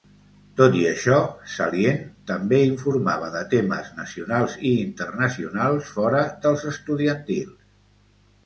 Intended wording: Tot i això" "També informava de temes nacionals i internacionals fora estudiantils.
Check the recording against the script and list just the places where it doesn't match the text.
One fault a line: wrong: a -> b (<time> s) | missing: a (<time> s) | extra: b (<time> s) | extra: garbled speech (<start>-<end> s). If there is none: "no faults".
extra: Salient (1.6 s)
extra: dels (6.5 s)